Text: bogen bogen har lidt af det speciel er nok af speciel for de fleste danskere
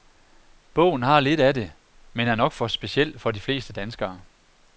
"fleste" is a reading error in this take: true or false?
false